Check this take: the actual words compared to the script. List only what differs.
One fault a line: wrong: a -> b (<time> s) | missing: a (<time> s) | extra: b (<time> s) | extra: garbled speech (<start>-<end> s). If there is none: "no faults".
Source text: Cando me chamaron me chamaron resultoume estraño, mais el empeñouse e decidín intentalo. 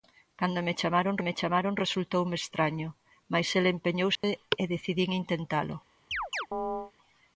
no faults